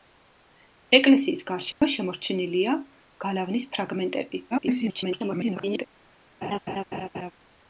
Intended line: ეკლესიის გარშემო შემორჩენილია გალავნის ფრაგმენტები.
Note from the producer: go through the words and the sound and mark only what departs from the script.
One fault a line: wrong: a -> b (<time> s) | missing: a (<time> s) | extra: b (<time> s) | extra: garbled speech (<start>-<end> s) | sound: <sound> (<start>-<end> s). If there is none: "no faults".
sound: dropout (1.7-1.8 s)
extra: garbled speech (4.5-5.9 s)
sound: laugh (6.4-7.3 s)